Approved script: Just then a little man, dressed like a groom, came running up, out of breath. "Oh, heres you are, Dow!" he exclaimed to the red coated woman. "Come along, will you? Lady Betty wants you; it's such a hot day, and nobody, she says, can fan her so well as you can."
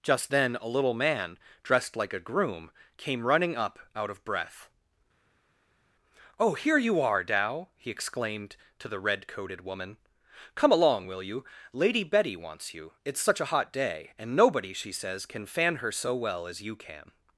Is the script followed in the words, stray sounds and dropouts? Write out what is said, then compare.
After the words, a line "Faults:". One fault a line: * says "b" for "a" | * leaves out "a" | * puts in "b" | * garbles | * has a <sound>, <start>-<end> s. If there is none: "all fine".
Just then a little man, dressed like a groom, came running up, out of breath. "Oh, here you are, Dow!" he exclaimed to the red coated woman. "Come along, will you? Lady Betty wants you; it's such a hot day, and nobody, she says, can fan her so well as you can."
Faults:
* says "here" for "heres"